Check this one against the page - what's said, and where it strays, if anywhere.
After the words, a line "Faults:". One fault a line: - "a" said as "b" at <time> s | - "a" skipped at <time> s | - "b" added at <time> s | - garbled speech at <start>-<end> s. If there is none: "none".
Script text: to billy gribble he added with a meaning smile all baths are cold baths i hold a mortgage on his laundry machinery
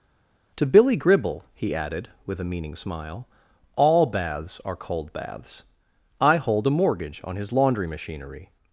to billy gribble he added with a meaning smile all baths are cold baths i hold a mortgage on his laundry machinery
Faults:
none